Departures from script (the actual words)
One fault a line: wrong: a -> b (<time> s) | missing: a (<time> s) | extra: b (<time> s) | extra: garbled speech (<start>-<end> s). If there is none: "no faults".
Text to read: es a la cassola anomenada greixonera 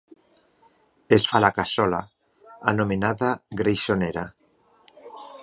no faults